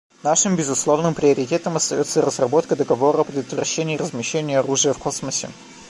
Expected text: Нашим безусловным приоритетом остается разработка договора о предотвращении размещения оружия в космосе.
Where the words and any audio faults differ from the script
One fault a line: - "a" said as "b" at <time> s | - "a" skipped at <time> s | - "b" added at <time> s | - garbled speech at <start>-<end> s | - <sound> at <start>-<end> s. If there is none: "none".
none